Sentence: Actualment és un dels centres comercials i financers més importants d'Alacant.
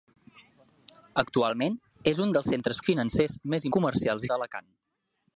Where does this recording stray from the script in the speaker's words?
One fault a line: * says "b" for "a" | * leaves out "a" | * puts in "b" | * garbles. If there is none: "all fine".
* leaves out "comercials"
* says "comercials" for "importants"